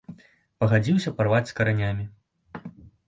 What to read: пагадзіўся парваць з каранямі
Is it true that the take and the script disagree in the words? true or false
false